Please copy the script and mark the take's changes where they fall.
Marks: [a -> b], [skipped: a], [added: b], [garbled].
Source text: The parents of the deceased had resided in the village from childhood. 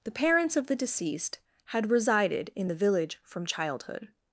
The parents of the deceased had resided in the village from childhood.